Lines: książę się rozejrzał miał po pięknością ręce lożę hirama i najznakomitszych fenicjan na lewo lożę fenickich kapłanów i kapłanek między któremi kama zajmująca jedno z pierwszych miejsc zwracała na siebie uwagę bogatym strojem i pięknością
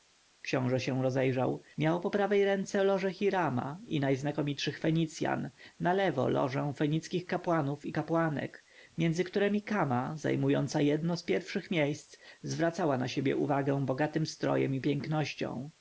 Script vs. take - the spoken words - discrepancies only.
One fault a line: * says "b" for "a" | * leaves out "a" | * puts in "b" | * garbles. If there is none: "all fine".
* says "prawej" for "pięknością"